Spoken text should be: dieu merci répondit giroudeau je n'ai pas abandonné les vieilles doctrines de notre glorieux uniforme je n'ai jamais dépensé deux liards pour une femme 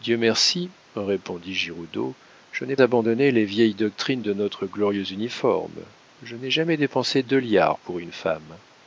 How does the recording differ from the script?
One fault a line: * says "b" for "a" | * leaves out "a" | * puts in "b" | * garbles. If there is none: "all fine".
* leaves out "pas"